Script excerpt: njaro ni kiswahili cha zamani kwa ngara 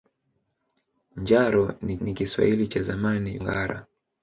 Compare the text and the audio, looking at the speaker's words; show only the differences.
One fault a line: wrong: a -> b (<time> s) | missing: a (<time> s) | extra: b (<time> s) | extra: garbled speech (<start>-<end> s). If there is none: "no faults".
extra: ni (2.0 s)
missing: kwa (3.4 s)